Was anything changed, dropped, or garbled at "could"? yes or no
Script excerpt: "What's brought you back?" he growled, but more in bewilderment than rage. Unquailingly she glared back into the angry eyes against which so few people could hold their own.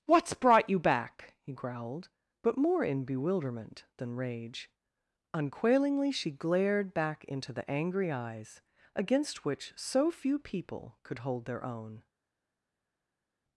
no